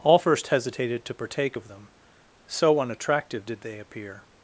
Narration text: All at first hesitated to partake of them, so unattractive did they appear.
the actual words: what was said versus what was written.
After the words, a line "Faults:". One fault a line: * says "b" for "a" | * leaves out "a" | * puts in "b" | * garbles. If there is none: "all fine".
All first hesitated to partake of them, so unattractive did they appear.
Faults:
* leaves out "at"